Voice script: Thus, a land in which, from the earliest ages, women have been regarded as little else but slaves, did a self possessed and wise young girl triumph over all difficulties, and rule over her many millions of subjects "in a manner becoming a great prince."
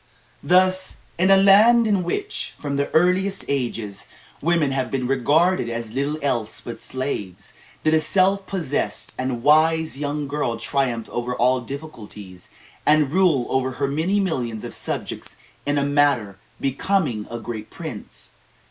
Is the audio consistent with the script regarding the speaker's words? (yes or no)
no